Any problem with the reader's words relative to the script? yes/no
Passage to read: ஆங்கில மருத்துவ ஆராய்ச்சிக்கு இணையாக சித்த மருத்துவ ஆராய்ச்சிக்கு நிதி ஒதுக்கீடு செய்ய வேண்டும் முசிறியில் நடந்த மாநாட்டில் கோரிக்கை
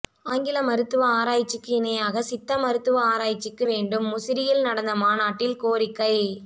yes